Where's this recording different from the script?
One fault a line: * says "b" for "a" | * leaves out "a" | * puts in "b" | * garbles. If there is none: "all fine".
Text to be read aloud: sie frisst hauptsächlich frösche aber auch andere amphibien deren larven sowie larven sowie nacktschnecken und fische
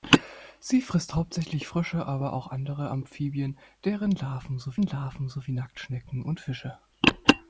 all fine